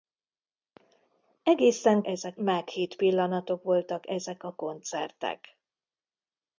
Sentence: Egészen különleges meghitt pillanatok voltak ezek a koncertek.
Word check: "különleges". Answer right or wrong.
wrong